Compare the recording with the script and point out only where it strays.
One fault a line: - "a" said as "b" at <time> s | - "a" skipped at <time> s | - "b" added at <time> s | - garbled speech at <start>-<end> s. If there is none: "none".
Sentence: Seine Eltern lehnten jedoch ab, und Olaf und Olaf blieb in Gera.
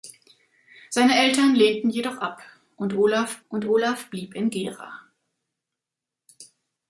none